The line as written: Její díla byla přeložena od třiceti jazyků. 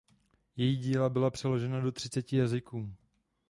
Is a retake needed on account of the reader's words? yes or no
yes